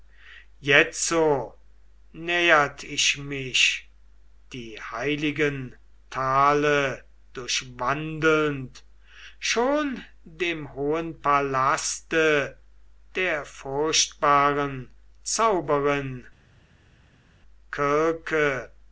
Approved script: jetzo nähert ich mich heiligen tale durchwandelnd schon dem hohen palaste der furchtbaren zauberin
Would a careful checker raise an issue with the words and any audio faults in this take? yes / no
yes